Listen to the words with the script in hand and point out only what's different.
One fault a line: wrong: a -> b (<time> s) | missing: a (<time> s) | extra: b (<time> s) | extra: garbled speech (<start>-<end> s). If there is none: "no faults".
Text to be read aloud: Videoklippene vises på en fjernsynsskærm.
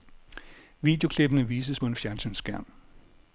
no faults